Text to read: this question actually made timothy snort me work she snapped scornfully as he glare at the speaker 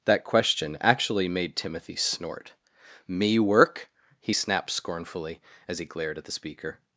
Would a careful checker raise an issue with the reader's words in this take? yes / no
yes